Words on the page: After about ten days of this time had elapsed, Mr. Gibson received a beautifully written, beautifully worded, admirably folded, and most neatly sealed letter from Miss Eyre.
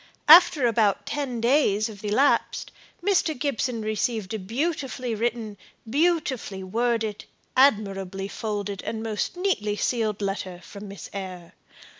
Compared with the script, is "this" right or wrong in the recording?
wrong